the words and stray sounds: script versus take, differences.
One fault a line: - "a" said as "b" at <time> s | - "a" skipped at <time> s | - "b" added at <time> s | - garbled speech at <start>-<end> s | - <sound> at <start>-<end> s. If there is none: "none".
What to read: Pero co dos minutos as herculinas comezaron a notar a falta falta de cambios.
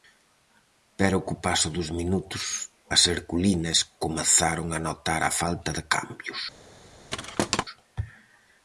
- "paso" added at 1.4 s
- "falta" skipped at 5.7 s
- thud at 7.1-7.6 s